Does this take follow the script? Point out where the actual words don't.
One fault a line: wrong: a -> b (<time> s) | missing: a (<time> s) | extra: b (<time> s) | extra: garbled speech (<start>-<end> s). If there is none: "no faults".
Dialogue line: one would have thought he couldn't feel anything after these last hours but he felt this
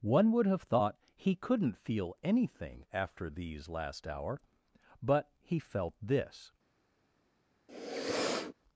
wrong: hours -> hour (4.1 s)